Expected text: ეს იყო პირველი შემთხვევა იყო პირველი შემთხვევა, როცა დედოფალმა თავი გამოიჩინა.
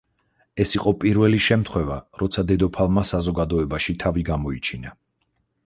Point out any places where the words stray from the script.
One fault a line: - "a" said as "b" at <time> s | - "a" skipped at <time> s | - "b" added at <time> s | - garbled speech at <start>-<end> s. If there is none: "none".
- "იყო პირველი შემთხვევა" skipped at 2.0 s
- "საზოგადოებაში" added at 3.1 s